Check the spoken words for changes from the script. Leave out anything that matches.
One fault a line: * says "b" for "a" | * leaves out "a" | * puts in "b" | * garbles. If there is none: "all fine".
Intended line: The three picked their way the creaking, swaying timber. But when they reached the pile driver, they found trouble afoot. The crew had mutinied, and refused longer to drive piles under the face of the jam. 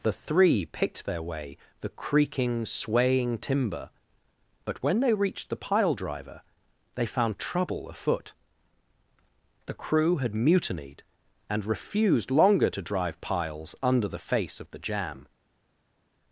all fine